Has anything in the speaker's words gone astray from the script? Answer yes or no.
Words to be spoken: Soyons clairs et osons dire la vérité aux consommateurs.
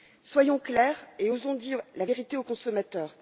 no